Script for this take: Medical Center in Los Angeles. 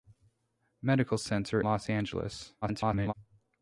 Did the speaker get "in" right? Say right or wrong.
wrong